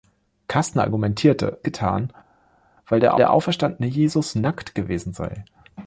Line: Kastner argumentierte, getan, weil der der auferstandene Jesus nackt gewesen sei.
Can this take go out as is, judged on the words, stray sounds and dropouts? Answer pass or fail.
pass